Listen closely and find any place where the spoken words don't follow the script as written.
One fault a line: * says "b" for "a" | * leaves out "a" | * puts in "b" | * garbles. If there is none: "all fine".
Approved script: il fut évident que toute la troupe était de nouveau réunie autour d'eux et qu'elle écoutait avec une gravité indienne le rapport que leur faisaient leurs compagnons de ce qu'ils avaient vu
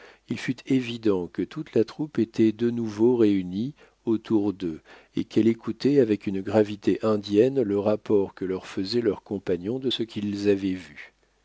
all fine